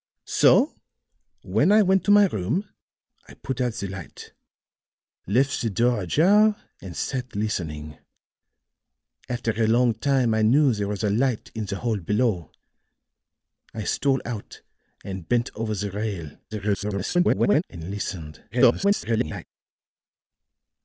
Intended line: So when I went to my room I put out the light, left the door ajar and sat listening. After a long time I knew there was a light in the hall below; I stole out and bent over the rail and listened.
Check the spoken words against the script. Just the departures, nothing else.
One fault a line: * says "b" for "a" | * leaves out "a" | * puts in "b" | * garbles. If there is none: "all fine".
* garbles
* garbles